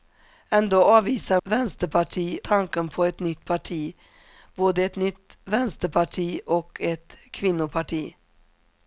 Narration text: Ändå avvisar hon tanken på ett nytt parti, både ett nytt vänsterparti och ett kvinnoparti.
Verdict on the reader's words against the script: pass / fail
fail